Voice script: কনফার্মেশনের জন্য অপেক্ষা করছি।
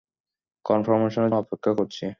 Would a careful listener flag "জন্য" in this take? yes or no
yes